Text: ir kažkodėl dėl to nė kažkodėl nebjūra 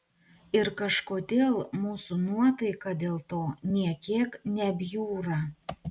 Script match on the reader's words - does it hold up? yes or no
no